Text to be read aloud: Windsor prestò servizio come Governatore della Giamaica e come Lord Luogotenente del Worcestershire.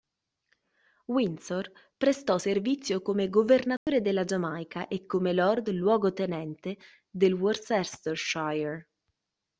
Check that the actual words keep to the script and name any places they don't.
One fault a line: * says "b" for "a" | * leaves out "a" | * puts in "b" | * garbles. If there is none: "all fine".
all fine